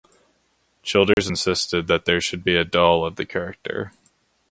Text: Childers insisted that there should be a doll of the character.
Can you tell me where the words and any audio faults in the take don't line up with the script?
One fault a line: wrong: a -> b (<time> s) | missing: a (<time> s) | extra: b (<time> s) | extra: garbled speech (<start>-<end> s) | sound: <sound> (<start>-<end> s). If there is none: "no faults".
sound: dropout (1.1-1.2 s)